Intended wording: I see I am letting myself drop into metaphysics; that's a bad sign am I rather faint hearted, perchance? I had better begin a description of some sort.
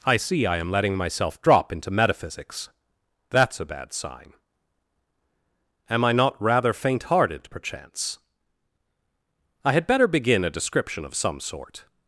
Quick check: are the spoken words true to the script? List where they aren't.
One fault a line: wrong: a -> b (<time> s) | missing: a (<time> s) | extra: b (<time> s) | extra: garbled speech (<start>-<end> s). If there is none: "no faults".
extra: not (6.1 s)